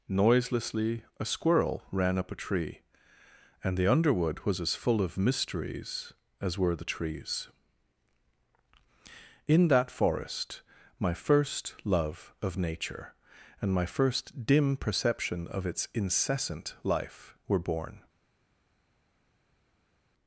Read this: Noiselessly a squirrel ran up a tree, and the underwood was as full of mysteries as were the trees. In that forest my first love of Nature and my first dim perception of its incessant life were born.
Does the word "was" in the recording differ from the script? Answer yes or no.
no